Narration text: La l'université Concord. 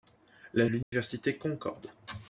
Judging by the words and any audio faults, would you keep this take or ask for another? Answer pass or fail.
fail